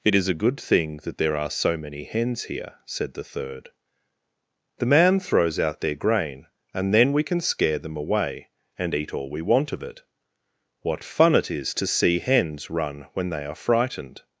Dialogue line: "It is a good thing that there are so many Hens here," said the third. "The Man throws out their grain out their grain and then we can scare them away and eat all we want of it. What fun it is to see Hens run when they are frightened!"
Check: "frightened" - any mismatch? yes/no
no